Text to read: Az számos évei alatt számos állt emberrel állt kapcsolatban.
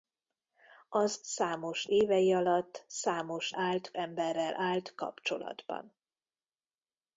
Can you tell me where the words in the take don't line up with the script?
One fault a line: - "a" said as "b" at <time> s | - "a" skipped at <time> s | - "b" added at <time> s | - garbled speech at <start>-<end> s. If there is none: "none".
none